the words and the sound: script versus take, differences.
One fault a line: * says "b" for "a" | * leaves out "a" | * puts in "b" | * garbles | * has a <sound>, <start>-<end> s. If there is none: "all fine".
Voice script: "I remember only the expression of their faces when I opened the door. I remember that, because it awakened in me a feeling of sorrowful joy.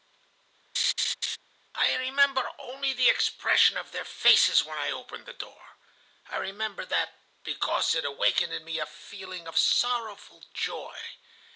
* has a laugh, 0.7-1.4 s